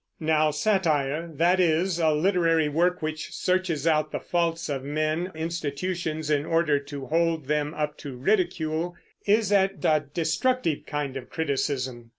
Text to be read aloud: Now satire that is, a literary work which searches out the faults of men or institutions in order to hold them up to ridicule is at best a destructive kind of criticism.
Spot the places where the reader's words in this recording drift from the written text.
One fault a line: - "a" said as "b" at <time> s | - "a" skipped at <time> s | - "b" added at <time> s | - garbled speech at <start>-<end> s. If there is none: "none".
- "or" skipped at 5.3 s
- "best" skipped at 9.8 s